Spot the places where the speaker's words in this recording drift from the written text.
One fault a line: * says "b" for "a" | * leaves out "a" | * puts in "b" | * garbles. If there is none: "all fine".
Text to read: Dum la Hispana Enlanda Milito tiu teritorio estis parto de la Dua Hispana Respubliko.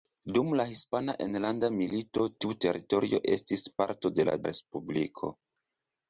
* leaves out "Dua Hispana"